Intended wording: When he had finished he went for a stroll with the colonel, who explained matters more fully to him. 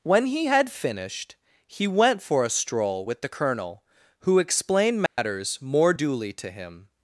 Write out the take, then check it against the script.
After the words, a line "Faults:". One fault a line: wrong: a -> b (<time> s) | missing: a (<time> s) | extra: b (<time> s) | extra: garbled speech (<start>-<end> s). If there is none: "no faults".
When he had finished he went for a stroll with the colonel, who explained matters more duly to him.
Faults:
wrong: fully -> duly (5.9 s)